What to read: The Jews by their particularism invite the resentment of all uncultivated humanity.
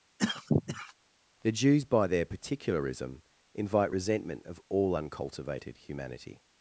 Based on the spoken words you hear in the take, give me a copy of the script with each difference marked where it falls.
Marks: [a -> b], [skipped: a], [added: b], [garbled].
The Jews by their particularism invite [skipped: the] resentment of all uncultivated humanity.